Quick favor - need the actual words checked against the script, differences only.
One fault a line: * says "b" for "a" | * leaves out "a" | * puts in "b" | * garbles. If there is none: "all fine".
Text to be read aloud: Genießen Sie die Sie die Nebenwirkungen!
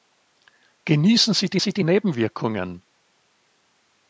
all fine